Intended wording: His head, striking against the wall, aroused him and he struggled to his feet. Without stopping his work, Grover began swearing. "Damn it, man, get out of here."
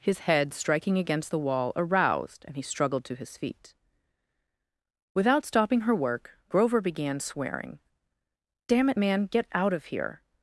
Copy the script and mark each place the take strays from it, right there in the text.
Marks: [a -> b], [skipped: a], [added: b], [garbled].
His head, striking against the wall, aroused [skipped: him] and he struggled to his feet. Without stopping [his -> her] work, Grover began swearing. "Damn it, man, get out of here."